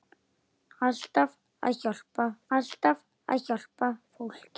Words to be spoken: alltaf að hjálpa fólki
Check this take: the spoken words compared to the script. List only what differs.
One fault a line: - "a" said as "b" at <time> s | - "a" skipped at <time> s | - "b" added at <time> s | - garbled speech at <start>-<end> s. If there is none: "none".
- "alltaf að hjálpa" added at 2.6 s